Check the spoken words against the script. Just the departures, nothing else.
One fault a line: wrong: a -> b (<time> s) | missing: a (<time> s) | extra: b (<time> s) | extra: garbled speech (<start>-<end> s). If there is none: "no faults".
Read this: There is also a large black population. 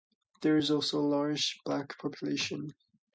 no faults